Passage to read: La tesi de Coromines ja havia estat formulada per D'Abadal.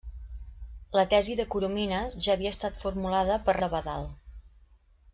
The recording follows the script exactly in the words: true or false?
true